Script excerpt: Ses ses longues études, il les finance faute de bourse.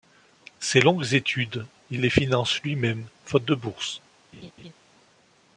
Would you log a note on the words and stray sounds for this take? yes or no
yes